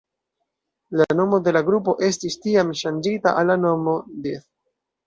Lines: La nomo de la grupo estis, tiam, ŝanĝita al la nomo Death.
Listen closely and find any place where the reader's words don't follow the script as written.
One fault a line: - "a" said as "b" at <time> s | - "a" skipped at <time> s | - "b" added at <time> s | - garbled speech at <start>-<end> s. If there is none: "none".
none